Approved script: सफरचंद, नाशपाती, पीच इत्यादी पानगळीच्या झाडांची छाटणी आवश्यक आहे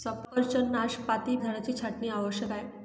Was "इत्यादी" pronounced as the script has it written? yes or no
no